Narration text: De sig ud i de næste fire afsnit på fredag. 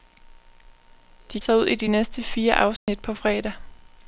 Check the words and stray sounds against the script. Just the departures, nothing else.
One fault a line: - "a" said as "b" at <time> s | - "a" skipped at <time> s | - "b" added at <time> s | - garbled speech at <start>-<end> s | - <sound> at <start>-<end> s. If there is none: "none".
- dropout at 2.8-2.9 s